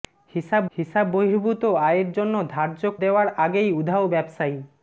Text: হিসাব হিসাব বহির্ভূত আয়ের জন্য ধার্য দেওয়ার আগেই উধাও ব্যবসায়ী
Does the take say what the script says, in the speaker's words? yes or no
yes